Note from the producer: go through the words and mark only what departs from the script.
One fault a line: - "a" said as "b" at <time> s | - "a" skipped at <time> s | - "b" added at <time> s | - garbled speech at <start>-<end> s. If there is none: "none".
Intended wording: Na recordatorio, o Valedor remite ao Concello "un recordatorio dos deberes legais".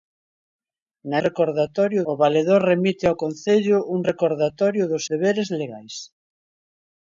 none